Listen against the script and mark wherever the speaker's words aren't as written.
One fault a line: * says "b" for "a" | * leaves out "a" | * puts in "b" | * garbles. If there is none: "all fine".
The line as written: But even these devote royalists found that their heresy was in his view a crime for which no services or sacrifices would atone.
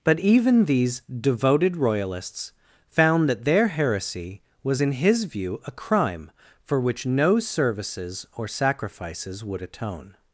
* says "devoted" for "devote"